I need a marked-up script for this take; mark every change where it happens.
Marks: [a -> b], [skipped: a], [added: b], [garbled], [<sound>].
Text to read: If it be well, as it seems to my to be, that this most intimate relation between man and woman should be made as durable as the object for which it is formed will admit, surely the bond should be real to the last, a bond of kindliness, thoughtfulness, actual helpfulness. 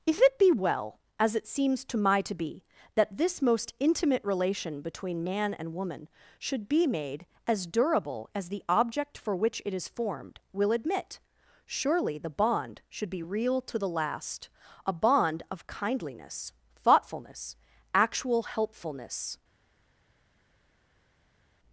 If it be well, as it seems to my to be, that this most intimate relation between man and woman should be made as durable as the object for which it is formed will admit, surely the bond should be real to the last, a bond of kindliness, thoughtfulness, actual helpfulness.